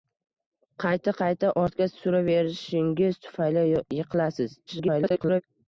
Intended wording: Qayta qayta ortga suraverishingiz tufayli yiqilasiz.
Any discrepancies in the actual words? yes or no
yes